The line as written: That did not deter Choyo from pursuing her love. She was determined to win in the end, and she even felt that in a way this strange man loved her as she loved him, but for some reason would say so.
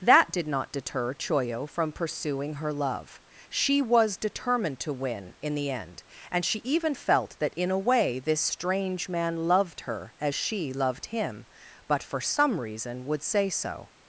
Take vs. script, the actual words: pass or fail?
pass